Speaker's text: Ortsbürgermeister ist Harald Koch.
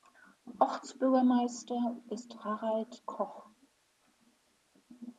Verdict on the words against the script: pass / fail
pass